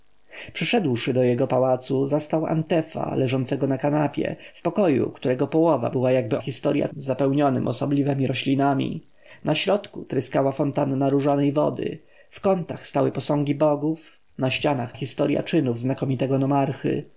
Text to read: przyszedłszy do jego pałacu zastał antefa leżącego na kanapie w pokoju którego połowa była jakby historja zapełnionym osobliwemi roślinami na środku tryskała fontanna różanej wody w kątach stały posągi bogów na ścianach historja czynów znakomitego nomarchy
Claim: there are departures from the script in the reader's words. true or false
false